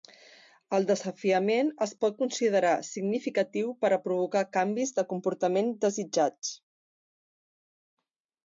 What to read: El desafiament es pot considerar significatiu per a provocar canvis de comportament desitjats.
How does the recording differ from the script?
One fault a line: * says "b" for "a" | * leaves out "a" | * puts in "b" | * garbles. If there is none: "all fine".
all fine